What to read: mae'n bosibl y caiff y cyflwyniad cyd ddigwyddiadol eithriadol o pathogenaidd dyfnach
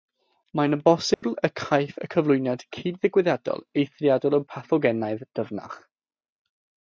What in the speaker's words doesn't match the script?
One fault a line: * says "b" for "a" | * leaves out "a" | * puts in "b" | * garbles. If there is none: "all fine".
all fine